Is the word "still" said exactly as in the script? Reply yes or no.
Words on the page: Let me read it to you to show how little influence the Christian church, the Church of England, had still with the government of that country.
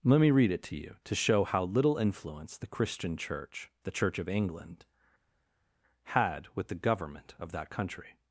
no